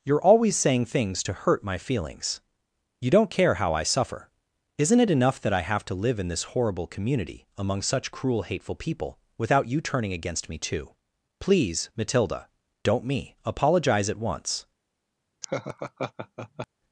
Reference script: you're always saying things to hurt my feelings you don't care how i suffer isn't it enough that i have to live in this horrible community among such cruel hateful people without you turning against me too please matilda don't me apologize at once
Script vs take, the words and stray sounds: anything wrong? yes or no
yes